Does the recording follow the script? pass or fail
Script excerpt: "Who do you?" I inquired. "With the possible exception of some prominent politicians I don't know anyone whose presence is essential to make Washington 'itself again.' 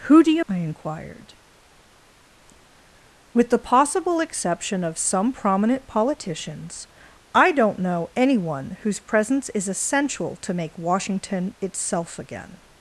pass